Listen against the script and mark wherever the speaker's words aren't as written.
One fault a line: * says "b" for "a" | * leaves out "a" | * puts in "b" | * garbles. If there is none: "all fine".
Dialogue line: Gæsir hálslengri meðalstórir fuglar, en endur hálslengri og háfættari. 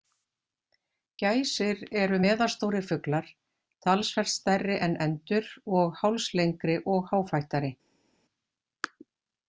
* says "eru" for "hálslengri"
* puts in "talsvert stærri"
* puts in "og"